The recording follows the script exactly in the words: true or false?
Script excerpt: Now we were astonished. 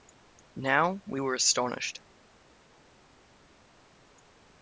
true